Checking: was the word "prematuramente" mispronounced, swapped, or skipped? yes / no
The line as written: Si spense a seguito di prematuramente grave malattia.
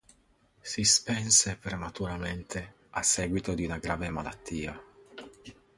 yes